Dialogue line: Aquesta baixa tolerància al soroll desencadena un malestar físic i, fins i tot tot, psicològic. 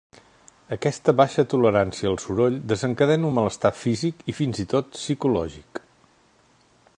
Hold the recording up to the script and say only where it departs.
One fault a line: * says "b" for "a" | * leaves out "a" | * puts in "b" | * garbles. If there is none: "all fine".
* leaves out "tot"